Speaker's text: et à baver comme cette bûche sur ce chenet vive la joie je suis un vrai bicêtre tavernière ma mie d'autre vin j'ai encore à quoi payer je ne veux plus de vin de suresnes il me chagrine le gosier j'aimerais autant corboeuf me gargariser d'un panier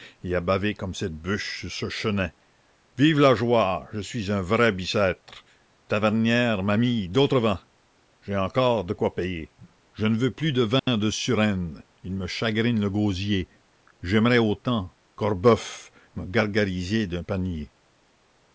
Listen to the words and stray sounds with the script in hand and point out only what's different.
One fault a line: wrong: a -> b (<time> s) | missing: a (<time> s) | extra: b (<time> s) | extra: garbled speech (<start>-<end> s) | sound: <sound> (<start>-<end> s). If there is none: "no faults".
wrong: à -> de (8.8 s)
sound: dropout (10.8-10.9 s)